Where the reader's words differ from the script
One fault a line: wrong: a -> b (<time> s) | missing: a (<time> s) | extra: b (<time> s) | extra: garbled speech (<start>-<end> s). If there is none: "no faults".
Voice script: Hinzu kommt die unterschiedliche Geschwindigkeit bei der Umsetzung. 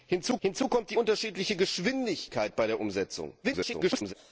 extra: hinzu (0.4 s)
extra: garbled speech (3.4-4.1 s)